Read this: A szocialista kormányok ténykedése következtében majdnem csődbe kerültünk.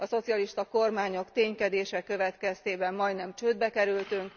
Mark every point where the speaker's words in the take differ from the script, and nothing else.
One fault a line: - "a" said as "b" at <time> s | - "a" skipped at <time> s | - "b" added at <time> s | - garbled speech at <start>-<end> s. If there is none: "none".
none